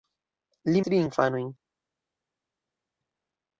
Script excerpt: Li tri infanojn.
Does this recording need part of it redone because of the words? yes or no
no